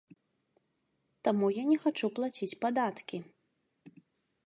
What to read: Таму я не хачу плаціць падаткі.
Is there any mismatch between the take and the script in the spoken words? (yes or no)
no